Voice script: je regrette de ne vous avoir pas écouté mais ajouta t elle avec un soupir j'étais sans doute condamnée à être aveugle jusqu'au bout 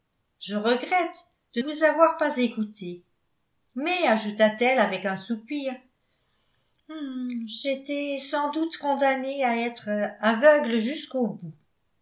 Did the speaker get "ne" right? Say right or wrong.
wrong